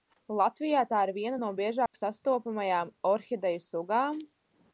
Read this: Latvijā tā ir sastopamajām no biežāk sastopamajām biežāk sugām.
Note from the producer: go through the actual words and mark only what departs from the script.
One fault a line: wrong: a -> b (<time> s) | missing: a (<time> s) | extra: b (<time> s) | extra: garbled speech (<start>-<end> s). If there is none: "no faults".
wrong: sastopamajām -> viena (1.2 s)
wrong: biežāk -> orhideju (3.1 s)